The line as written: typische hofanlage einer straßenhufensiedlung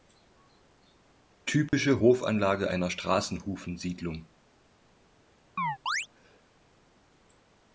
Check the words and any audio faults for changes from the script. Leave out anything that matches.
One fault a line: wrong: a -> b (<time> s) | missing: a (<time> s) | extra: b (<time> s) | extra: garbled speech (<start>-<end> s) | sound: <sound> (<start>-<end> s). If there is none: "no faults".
sound: dropout (1.7-1.7 s)
sound: chirp (5.6-6.1 s)